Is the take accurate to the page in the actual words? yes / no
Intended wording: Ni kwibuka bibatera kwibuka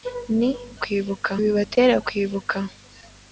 yes